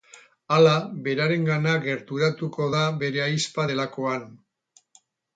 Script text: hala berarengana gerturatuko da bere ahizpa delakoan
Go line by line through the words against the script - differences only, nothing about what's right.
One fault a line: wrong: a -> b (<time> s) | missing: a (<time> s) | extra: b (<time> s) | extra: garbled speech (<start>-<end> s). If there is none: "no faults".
no faults